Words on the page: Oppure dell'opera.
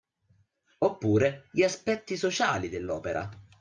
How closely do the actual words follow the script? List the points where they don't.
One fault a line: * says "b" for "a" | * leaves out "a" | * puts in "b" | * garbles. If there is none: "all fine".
* puts in "gli aspetti sociali"